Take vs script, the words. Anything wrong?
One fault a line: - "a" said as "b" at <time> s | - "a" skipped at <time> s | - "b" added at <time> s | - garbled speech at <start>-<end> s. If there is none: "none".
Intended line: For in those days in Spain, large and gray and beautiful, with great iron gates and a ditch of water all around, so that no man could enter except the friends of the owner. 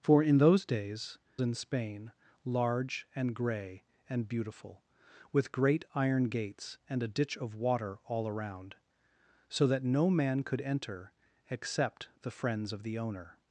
none